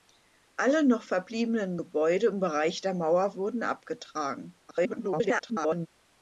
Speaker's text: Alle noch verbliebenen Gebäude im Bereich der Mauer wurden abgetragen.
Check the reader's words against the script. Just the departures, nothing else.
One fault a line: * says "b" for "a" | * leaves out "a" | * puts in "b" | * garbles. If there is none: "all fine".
* garbles